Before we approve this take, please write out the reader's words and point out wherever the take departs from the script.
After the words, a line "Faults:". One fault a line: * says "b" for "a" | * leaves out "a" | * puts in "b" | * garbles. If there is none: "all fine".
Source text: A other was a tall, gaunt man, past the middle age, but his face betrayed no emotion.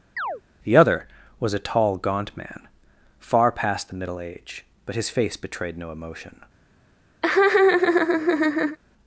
The other was a tall, gaunt man, far past the middle age, but his face betrayed no emotion.
Faults:
* says "The" for "A"
* puts in "far"